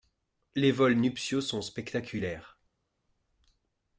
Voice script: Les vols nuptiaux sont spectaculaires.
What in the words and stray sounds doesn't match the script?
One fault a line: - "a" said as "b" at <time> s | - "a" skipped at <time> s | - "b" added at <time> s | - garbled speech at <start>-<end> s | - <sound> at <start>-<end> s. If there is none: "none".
none